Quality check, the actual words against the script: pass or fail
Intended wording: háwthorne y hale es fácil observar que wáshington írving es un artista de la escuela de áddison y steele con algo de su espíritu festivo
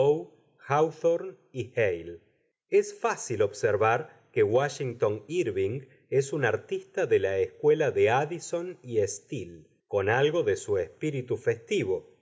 pass